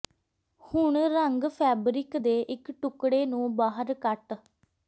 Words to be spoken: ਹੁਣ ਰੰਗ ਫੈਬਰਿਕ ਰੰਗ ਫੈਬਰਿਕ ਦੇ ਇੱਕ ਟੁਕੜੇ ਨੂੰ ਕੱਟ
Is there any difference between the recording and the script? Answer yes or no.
yes